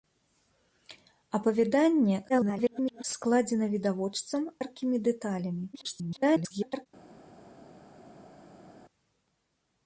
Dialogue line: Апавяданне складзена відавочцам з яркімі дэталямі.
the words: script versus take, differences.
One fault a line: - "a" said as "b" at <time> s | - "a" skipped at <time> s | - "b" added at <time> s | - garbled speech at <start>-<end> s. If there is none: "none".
- garbled speech at 2.3-3.0 s
- "з" skipped at 4.4 s
- garbled speech at 5.7-6.9 s